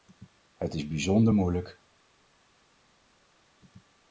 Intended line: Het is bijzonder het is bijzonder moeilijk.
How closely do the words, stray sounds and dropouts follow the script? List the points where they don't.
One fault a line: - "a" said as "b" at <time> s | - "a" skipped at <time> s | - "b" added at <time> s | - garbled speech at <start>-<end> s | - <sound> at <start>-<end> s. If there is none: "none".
- "het is bijzonder" skipped at 1.3 s